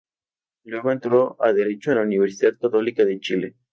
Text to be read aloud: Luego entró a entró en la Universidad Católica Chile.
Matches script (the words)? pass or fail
fail